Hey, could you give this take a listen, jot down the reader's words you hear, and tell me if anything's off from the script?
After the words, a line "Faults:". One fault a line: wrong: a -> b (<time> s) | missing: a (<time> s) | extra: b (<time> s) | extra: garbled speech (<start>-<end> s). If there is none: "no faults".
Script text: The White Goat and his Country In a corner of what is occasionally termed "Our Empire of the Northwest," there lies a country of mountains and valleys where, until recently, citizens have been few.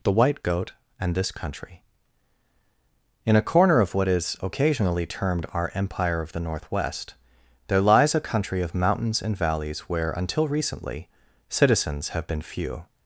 The White Goat and this Country In a corner of what is occasionally termed "Our Empire of the Northwest," there lies a country of mountains and valleys where, until recently, citizens have been few.
Faults:
wrong: his -> this (1.1 s)